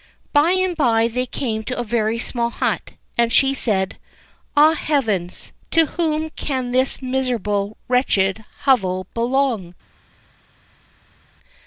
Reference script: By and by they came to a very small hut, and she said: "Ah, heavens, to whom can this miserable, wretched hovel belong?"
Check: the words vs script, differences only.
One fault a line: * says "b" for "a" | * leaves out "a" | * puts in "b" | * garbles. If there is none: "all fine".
all fine